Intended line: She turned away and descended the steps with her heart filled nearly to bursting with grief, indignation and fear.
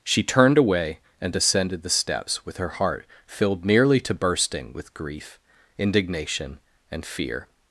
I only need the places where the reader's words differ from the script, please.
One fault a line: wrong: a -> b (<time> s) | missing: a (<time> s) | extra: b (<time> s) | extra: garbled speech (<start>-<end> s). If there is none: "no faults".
no faults